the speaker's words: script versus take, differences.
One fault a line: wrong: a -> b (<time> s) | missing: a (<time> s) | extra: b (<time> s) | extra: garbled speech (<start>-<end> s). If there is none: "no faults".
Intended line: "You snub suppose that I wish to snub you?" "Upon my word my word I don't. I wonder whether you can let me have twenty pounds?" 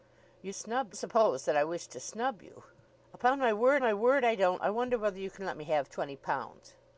no faults